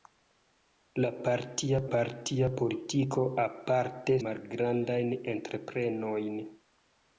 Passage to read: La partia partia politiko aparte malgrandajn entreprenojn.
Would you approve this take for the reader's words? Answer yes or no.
yes